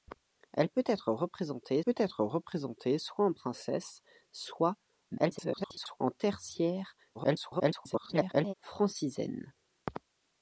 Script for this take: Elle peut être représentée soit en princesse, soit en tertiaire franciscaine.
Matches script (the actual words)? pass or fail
fail